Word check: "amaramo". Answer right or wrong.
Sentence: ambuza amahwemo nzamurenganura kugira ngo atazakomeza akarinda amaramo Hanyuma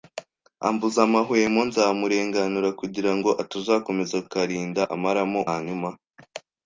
right